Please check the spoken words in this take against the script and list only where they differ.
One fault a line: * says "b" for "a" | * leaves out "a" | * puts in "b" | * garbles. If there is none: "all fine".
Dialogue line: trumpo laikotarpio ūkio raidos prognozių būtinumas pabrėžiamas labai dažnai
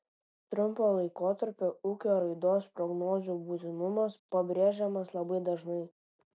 all fine